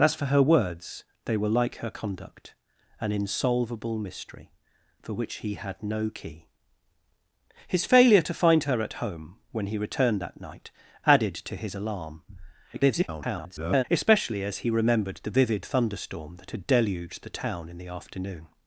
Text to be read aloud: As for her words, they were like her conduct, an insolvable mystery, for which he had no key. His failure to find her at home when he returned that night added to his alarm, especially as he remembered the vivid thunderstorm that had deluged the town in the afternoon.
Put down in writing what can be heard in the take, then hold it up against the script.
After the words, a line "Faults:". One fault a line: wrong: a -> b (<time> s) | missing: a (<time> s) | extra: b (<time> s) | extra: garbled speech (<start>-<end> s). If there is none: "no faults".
As for her words, they were like her conduct, an insolvable mystery, for which he had no key. His failure to find her at home when he returned that night added to his alarm, [garbled] especially as he remembered the vivid thunderstorm that had deluged the town in the afternoon.
Faults:
extra: garbled speech (12.7-13.8 s)